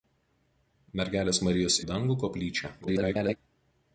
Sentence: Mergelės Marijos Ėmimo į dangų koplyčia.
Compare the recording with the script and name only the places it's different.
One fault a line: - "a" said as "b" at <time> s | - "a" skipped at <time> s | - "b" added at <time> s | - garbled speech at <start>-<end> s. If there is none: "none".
- "Ėmimo" skipped at 1.8 s
- garbled speech at 2.8-3.4 s